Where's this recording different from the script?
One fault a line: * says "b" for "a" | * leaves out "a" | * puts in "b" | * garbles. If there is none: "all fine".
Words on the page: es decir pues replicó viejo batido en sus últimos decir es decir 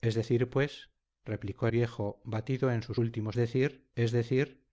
all fine